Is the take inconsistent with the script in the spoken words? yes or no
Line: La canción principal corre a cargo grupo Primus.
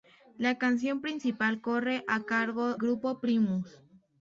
no